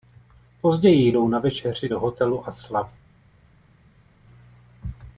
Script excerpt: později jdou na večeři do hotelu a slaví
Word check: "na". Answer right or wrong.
right